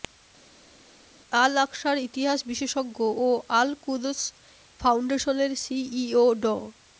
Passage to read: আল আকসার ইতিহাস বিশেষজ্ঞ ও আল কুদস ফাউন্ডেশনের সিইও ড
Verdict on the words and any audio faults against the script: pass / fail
pass